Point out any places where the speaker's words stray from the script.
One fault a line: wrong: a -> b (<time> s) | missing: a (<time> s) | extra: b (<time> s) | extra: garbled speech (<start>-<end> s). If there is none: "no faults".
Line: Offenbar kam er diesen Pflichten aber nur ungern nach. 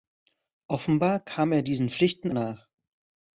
missing: aber nur ungern (2.3 s)